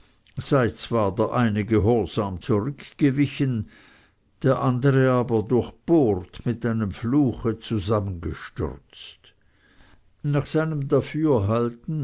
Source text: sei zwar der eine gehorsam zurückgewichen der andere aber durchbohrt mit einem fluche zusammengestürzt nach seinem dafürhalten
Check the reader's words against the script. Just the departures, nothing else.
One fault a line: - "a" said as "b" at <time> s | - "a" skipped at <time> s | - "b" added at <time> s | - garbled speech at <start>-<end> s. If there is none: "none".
none